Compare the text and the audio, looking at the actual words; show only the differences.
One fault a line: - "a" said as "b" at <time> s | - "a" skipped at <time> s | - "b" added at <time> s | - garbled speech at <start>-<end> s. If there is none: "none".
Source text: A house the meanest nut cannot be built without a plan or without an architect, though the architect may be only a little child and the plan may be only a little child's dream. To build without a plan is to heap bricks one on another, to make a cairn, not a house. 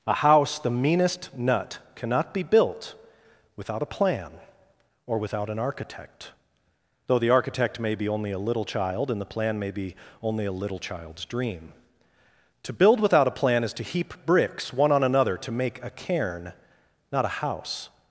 none